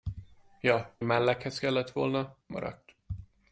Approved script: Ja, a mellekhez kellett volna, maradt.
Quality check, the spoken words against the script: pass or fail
pass